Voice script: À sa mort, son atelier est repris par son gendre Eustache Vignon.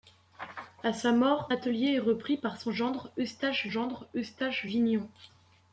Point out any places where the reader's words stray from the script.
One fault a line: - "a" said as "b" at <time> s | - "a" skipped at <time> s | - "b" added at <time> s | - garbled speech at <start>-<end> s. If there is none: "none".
- "son" skipped at 1.5 s
- "gendre Eustache" added at 3.7 s